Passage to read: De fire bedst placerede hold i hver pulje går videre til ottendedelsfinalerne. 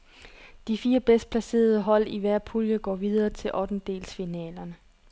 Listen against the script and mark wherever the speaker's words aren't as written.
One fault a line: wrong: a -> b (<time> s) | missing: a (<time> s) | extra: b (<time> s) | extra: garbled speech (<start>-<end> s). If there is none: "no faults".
no faults